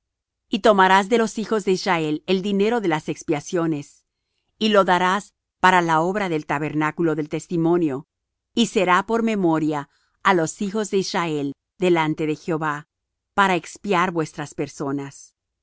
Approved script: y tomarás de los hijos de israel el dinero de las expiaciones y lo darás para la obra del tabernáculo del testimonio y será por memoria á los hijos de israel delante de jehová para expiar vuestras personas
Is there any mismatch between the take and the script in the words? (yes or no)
no